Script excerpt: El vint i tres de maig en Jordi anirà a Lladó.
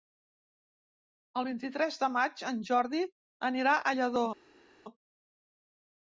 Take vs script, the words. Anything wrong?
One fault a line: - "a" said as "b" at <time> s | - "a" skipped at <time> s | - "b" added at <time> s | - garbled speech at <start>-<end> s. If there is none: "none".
none